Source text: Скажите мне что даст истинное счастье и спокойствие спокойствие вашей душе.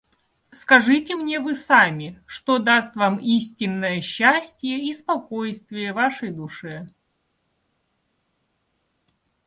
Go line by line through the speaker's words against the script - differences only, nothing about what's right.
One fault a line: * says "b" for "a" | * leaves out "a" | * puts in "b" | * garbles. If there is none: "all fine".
* puts in "вы сами"
* puts in "вам"
* leaves out "спокойствие"